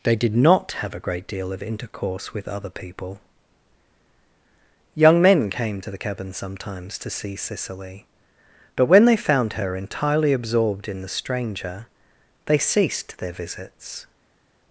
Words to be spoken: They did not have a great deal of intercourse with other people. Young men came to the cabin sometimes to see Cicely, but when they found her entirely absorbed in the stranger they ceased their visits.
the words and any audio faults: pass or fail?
pass